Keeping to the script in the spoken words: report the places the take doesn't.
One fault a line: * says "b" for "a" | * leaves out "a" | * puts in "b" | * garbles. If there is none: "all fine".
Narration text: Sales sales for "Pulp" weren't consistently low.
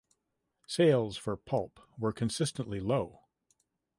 * leaves out "sales"
* says "were" for "weren't"